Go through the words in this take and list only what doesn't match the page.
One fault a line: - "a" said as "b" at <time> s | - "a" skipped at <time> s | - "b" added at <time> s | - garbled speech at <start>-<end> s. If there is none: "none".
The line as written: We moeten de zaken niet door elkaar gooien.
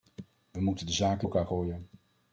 - "niet door" skipped at 1.3 s